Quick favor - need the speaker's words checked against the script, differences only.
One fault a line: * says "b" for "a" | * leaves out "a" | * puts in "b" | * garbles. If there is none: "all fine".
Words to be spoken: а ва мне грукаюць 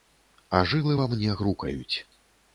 * puts in "жылы"